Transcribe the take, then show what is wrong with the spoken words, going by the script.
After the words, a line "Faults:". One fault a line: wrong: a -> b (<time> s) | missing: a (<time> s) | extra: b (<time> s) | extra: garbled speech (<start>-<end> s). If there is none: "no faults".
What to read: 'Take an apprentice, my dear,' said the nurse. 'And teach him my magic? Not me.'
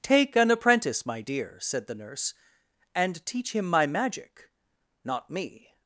'Take an apprentice, my dear,' said the nurse. 'And teach him my magic? Not me.'
Faults:
no faults